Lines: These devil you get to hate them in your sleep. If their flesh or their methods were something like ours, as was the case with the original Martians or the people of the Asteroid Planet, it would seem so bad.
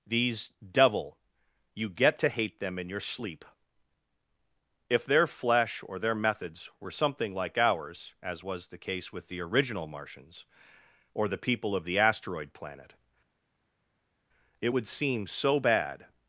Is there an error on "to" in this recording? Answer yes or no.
no